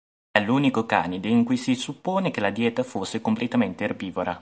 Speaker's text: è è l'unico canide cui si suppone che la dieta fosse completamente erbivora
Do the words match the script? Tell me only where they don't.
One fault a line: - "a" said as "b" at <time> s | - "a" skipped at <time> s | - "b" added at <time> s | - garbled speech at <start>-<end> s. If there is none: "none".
- "è" skipped at 0.4 s
- "in" added at 1.3 s